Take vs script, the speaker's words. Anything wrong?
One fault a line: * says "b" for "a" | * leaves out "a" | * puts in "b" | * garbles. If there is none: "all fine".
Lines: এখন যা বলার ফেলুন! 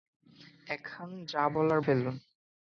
all fine